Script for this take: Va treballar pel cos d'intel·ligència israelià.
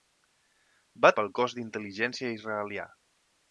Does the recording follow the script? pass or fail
fail